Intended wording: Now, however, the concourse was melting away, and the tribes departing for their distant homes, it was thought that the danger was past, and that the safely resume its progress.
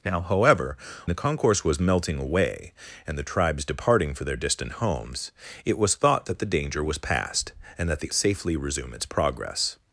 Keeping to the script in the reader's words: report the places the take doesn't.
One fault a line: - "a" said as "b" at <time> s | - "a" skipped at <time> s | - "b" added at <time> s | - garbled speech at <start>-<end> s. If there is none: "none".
none